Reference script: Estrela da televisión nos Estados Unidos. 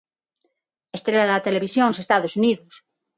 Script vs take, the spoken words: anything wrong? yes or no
no